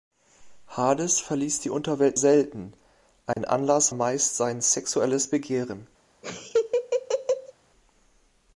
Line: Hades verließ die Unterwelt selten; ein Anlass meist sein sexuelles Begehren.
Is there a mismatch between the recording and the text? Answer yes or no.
no